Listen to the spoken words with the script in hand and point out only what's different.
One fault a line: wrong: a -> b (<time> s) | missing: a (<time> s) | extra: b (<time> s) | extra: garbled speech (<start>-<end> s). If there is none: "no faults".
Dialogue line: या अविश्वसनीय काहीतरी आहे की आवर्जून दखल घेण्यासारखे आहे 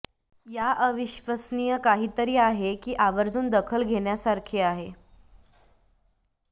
no faults